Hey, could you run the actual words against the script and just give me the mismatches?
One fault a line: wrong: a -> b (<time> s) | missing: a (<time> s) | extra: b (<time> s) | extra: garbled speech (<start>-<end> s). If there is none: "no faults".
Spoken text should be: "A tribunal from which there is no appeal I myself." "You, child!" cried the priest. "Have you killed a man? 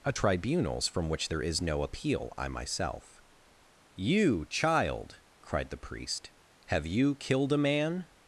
wrong: tribunal -> tribunals (0.1 s)